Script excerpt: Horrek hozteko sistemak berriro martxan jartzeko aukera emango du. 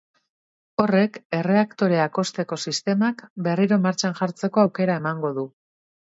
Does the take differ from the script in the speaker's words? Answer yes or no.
yes